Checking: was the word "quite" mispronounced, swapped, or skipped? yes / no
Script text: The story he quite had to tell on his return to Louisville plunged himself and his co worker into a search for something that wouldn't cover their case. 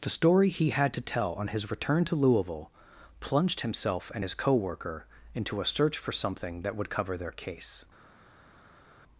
yes